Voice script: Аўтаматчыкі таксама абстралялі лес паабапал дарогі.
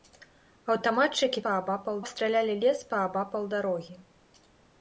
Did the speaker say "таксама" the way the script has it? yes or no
no